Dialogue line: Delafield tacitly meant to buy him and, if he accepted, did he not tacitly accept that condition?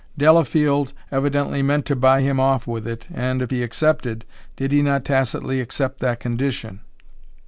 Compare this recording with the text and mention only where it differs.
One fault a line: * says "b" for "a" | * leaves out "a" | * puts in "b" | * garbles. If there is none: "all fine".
* says "evidently" for "tacitly"
* puts in "off with it"